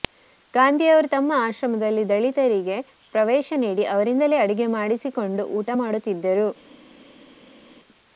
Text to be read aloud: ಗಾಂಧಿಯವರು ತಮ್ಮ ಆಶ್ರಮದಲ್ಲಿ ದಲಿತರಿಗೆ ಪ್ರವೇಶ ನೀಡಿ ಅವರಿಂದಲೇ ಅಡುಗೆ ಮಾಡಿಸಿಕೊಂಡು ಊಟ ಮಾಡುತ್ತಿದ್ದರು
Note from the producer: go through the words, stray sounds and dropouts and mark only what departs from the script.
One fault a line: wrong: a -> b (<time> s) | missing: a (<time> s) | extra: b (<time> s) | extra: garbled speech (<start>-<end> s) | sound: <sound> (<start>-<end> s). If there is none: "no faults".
no faults